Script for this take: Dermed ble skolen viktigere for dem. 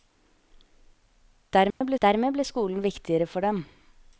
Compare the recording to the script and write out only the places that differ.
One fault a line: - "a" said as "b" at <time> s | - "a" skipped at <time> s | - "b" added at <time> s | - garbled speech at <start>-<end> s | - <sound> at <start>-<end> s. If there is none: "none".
- dropout at 1.7-1.8 s
- "dermed ble" added at 2.0 s